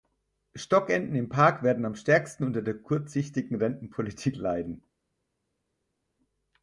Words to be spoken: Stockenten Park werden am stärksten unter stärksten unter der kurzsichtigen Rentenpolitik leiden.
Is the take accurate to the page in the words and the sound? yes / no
no